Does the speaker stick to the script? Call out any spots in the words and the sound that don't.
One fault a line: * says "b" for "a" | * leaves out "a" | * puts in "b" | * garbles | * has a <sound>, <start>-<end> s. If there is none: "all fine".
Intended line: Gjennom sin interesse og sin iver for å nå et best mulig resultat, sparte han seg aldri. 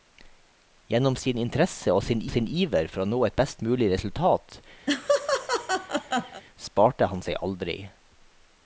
* puts in "sin"
* has a laugh, 4.9-6.4 s